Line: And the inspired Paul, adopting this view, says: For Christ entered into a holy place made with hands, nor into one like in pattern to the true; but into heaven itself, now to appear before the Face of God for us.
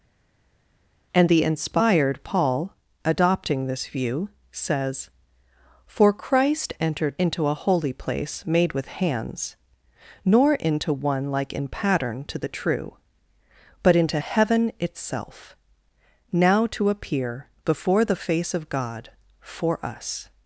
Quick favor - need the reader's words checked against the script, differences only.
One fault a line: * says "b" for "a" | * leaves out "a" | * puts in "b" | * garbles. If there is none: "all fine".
all fine